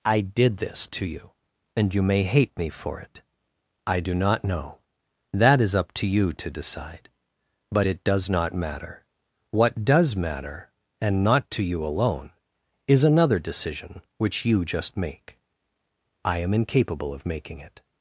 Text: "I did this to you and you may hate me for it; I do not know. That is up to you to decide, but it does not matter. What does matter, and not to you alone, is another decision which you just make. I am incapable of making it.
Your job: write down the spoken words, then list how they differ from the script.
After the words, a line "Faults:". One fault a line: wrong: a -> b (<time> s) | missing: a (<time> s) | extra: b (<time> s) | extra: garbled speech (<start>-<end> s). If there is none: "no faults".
"I did this to you and you may hate me for it; I do not know. That is up to you to decide, but it does not matter. What does matter, and not to you alone, is another decision which you just make. I am incapable of making it.
Faults:
no faults